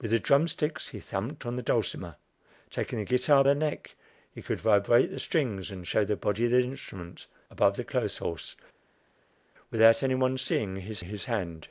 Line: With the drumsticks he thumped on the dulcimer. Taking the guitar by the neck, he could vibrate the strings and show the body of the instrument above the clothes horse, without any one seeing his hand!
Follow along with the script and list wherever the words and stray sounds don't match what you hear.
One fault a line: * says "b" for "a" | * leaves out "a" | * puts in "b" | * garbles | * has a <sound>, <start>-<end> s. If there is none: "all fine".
* leaves out "by"
* puts in "his"